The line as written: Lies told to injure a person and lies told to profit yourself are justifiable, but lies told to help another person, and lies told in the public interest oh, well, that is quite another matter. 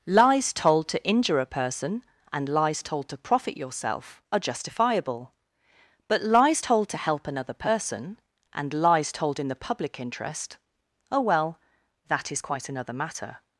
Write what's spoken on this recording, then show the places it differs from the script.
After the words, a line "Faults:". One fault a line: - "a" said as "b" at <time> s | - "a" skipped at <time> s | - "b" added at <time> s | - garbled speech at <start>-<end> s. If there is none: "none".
Lies told to injure a person and lies told to profit yourself are justifiable, but lies told to help another person, and lies told in the public interest oh, well, that is quite another matter.
Faults:
none